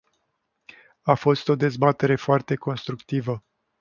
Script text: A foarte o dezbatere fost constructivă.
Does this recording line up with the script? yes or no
no